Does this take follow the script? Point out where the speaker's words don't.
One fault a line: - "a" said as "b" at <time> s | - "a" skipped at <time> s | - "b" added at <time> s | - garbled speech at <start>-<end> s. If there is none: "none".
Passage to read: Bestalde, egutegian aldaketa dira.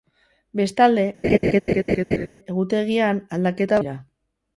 none